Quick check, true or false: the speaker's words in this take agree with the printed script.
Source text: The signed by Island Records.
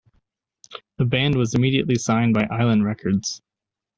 false